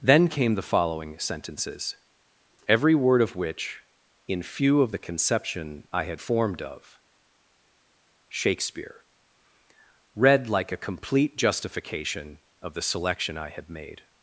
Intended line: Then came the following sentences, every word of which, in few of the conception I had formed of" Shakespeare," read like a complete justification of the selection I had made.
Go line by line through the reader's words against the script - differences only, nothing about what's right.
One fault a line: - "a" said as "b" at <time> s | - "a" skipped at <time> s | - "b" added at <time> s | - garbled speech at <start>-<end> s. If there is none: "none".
none